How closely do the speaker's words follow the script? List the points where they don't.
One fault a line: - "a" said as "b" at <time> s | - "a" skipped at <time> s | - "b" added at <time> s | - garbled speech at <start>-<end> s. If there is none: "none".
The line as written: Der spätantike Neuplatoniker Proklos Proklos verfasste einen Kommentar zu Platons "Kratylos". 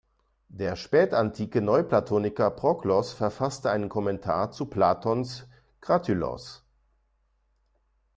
- "Proklos" skipped at 3.1 s